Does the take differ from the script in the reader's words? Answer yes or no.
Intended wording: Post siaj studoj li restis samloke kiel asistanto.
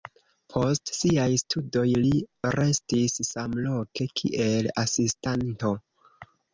no